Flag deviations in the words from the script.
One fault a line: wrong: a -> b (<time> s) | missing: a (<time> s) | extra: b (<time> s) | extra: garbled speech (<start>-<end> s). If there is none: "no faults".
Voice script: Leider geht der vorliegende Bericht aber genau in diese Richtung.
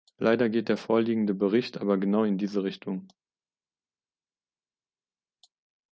no faults